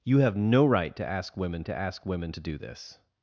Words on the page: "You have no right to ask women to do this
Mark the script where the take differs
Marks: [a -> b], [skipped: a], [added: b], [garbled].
"You have no right to ask women to [added: ask women to] do this